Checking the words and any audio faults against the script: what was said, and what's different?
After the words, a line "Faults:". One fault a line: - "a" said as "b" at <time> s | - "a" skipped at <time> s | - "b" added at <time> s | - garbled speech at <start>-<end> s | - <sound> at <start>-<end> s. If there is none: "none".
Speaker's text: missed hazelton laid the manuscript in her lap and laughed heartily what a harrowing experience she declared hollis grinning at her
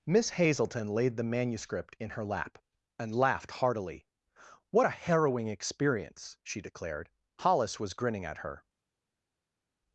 miss hazelton laid the manuscript in her lap and laughed heartily what a harrowing experience she declared hollis was grinning at her
Faults:
- "missed" said as "miss" at 0.1 s
- "was" added at 7.8 s